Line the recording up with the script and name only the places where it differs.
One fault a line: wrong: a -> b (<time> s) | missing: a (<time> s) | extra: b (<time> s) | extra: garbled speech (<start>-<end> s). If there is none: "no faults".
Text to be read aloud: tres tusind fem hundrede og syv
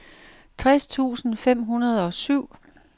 no faults